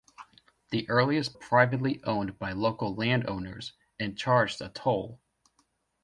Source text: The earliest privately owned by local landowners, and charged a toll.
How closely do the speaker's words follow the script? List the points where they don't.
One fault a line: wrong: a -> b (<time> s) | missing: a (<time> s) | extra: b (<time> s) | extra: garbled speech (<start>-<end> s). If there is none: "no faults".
no faults